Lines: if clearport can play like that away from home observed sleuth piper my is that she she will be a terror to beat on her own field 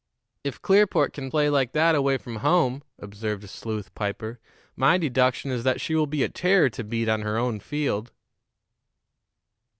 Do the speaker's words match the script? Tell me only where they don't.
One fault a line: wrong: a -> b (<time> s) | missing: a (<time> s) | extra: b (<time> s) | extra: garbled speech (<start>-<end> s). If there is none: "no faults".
extra: deduction (5.0 s)
missing: she (5.9 s)